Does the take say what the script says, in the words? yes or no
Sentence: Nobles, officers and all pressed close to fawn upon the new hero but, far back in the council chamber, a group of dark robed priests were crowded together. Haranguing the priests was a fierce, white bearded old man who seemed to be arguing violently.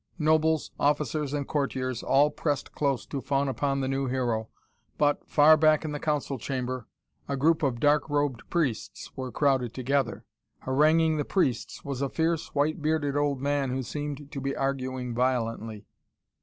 no